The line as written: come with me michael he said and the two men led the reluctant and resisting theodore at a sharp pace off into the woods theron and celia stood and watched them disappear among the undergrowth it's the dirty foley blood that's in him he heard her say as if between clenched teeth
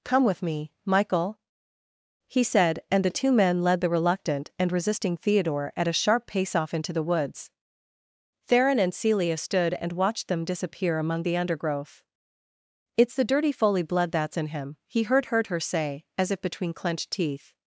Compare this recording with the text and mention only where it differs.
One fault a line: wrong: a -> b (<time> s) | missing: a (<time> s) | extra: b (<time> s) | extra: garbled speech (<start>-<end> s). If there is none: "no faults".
extra: heard (15.2 s)